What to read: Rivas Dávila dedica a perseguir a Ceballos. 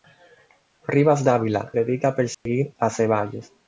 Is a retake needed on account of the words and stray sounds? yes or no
yes